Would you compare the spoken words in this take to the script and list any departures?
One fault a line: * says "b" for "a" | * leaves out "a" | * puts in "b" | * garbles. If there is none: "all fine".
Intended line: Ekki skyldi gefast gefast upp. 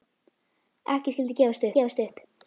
all fine